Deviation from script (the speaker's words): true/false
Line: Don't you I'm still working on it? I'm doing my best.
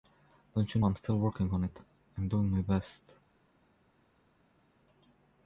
false